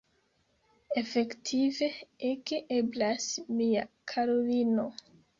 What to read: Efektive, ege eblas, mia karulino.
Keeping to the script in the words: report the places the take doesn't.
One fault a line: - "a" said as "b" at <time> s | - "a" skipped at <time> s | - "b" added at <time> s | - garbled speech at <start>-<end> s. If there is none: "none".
none